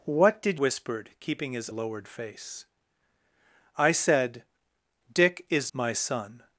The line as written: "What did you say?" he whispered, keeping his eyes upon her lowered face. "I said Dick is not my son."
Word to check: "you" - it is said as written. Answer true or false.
false